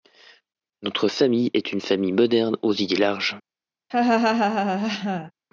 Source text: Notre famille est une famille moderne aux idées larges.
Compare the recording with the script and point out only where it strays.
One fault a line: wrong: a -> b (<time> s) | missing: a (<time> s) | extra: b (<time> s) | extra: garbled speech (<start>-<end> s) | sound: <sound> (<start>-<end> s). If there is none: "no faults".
sound: laugh (3.9-5.3 s)